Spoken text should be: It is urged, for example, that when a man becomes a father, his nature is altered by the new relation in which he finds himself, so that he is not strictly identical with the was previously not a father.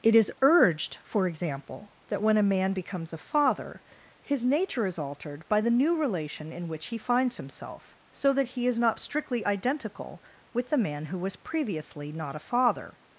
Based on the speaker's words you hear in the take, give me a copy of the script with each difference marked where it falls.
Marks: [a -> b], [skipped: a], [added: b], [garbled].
It is urged, for example, that when a man becomes a father, his nature is altered by the new relation in which he finds himself, so that he is not strictly identical with the [added: man who] was previously not a father.